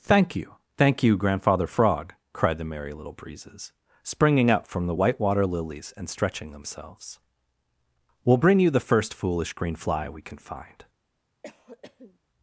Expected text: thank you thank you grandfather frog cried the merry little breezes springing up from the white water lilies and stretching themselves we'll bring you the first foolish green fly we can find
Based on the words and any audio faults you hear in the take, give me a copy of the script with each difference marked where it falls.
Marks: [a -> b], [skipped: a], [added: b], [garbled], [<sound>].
thank you thank you grandfather frog cried the merry little breezes springing up from the white water lilies and stretching themselves we'll bring you the first foolish green fly we can find [cough]